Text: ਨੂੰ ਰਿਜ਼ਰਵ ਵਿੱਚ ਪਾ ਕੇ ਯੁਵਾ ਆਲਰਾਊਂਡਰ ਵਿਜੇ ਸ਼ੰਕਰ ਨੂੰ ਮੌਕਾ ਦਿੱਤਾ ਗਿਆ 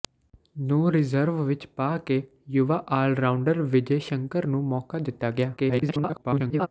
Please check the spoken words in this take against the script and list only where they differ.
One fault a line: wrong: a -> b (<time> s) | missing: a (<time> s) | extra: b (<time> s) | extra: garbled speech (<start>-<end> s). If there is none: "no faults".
extra: garbled speech (5.6-6.7 s)